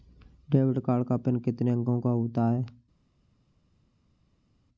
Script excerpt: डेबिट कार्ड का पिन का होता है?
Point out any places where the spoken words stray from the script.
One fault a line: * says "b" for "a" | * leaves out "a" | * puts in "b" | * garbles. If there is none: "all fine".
* puts in "कितने अंकों"